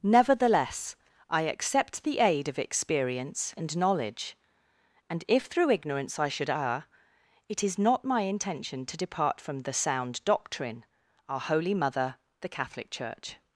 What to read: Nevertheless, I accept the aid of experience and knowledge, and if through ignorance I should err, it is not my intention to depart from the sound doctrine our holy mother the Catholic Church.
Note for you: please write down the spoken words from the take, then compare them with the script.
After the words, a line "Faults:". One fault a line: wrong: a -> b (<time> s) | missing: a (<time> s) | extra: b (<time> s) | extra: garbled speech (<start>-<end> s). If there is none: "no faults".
Nevertheless, I accept the aid of experience and knowledge, and if through ignorance I should err, it is not my intention to depart from the sound doctrine our holy mother the Catholic Church.
Faults:
no faults